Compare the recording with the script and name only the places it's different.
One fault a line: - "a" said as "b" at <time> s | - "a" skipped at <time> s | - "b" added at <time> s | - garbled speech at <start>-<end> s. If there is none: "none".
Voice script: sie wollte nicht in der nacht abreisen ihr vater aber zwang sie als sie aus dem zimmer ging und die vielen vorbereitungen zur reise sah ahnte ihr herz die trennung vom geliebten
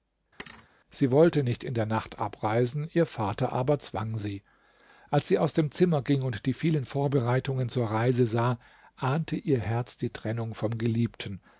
none